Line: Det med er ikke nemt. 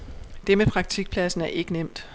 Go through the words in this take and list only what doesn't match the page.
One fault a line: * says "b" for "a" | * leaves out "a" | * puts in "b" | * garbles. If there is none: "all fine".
* puts in "praktikpladsen"